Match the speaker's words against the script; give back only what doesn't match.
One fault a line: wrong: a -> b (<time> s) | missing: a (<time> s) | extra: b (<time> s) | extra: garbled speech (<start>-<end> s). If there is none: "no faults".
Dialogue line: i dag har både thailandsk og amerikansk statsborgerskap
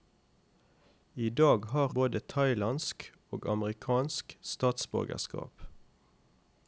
no faults